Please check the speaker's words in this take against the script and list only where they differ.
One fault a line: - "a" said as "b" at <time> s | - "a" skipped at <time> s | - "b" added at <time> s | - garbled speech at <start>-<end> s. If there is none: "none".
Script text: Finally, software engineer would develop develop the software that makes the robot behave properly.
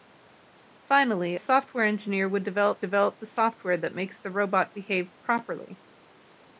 none